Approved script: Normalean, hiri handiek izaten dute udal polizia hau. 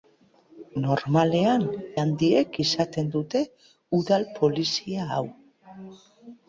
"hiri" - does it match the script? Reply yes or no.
no